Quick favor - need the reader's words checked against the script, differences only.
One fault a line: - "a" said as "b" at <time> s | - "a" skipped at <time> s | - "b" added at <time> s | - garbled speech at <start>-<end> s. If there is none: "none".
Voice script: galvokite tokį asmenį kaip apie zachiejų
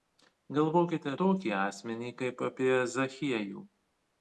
none